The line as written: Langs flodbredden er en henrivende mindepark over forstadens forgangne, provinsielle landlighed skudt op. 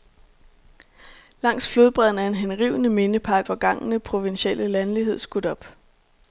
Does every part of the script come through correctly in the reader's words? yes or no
no